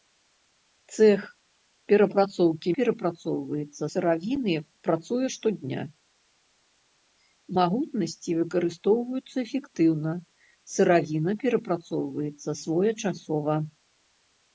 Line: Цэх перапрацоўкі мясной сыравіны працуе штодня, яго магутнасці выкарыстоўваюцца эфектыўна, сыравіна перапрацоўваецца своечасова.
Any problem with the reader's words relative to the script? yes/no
yes